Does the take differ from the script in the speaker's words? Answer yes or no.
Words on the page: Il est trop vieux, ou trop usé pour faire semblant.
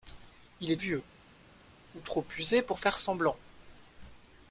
yes